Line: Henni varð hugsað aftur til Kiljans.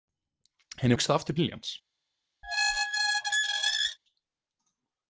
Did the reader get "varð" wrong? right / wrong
wrong